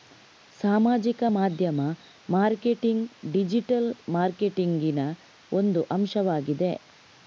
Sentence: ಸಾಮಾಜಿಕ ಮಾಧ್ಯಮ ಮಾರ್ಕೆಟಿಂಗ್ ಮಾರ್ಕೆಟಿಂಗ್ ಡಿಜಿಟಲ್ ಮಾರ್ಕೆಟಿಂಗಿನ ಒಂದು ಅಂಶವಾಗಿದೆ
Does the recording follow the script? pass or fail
fail